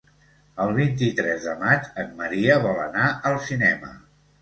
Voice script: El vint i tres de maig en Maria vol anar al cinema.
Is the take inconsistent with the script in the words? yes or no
no